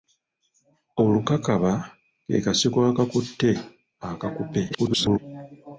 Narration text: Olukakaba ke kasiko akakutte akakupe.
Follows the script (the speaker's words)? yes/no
no